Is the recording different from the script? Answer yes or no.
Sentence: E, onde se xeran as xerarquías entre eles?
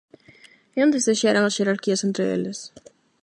no